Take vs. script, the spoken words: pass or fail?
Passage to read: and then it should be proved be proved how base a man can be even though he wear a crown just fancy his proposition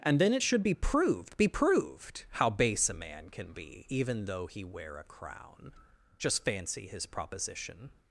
pass